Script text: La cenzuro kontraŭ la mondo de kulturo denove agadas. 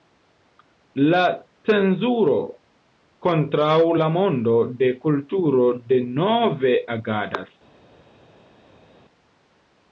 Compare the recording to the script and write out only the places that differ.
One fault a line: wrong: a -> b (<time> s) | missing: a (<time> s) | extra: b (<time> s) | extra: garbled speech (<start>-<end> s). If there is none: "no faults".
no faults